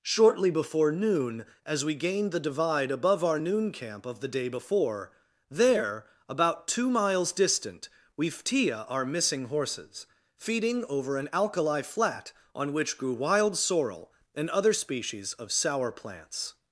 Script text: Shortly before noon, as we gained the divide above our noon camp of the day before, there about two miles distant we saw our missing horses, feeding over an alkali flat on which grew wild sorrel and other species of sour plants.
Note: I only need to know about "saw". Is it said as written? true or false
false